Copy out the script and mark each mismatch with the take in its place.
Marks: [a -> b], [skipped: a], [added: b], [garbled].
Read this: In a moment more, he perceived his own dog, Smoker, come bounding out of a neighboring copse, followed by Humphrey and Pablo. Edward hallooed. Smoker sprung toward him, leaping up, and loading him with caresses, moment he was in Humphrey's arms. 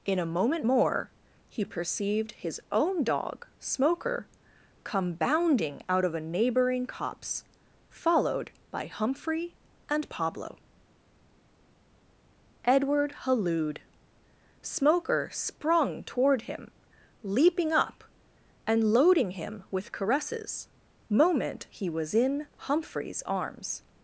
In a moment more, he perceived his own dog, Smoker, come bounding out of a neighboring copse, followed by Humphrey and Pablo. Edward hallooed. Smoker sprung toward him, leaping up, and loading him with caresses, moment he was in Humphrey's arms.